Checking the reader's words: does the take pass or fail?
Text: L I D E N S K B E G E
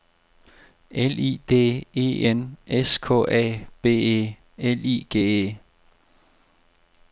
fail